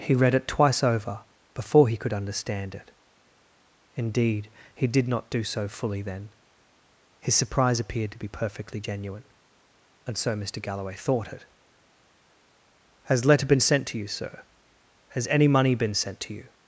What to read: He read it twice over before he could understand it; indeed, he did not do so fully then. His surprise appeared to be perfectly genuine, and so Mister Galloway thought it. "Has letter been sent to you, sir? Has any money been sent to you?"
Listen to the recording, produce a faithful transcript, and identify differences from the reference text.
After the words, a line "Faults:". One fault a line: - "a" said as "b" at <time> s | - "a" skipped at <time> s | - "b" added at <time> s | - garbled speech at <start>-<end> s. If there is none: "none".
He read it twice over before he could understand it; indeed, he did not do so fully then. His surprise appeared to be perfectly genuine, and so Mister Galloway thought it. "Has letter been sent to you, sir? Has any money been sent to you?"
Faults:
none